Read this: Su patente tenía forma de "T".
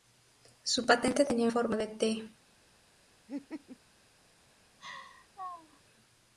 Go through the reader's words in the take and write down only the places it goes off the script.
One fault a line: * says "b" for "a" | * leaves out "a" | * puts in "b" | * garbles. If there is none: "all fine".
all fine